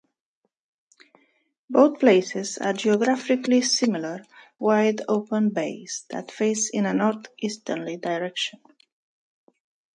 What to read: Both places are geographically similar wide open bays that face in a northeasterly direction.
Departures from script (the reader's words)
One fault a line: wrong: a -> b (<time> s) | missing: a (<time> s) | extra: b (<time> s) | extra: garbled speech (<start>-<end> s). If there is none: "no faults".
no faults